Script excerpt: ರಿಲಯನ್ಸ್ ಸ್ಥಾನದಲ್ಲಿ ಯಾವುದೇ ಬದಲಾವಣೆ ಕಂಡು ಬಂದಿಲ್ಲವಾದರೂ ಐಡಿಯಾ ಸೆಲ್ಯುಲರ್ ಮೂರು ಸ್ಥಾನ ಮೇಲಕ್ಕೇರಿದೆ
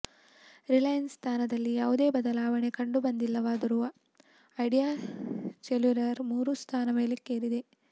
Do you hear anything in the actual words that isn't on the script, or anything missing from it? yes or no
no